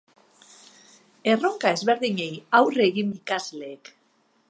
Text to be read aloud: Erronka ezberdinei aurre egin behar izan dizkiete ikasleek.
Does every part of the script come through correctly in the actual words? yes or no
no